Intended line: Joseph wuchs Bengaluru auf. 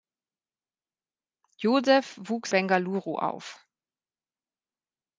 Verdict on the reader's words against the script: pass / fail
pass